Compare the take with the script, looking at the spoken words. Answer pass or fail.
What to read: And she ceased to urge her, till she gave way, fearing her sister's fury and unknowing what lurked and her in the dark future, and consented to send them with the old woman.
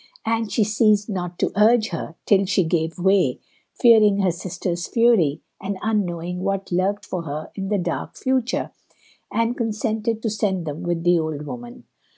fail